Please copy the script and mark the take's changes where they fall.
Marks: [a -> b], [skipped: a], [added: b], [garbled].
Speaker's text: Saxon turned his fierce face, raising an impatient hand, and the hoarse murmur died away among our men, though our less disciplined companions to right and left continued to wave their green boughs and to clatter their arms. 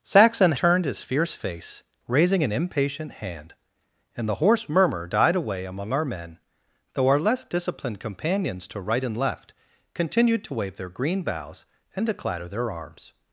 Saxon turned his fierce face, raising an impatient hand, and the hoarse murmur died away among our men, though our less disciplined companions to right and left continued to wave their green boughs and to clatter their arms.